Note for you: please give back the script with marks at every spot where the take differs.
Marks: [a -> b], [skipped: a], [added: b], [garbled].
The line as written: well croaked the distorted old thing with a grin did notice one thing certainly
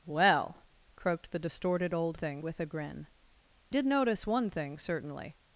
well croaked the distorted old thing with a grin did notice one thing certainly